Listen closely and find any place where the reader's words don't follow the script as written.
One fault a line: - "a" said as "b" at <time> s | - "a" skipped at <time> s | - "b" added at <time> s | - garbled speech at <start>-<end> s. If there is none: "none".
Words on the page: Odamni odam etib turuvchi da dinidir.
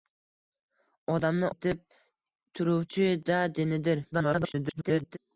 - "odam" skipped at 1.5 s
- garbled speech at 4.1-5.2 s